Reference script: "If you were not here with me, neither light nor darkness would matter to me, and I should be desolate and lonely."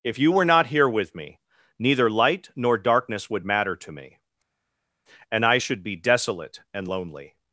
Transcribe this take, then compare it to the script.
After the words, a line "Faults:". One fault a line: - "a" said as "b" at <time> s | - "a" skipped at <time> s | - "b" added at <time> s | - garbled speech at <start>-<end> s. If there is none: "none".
"If you were not here with me, neither light nor darkness would matter to me, and I should be desolate and lonely."
Faults:
none